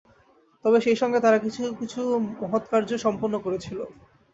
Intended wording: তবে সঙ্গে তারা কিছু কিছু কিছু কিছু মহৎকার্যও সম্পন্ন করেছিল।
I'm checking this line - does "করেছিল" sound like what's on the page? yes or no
yes